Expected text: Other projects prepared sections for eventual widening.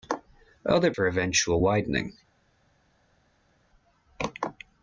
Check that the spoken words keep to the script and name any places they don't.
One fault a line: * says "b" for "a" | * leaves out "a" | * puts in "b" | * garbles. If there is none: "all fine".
* leaves out "projects prepared sections"